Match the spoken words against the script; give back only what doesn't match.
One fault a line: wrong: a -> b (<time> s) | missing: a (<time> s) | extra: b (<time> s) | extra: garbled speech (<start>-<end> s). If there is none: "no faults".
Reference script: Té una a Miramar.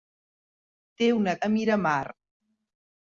no faults